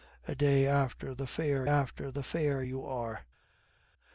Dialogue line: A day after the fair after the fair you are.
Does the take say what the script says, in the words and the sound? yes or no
yes